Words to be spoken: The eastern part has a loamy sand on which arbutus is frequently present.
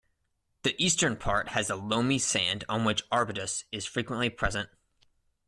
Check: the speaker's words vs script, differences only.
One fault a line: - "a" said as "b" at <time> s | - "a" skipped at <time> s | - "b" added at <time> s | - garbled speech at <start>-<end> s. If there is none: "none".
none